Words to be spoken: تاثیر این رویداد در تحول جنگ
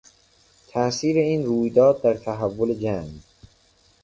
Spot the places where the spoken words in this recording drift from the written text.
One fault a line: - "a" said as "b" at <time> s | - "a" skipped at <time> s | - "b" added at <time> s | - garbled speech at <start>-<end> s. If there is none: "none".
none